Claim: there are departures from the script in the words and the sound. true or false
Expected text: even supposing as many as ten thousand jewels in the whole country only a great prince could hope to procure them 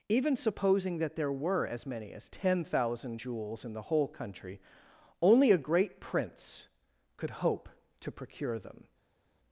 true